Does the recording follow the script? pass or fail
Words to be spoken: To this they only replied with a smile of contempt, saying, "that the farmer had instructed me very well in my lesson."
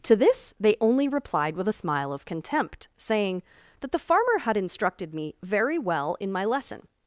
pass